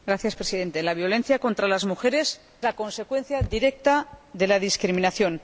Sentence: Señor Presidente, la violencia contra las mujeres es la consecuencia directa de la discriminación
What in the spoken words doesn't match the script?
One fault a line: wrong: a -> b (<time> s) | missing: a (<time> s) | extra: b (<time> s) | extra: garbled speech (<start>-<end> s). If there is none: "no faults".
missing: es (2.4 s)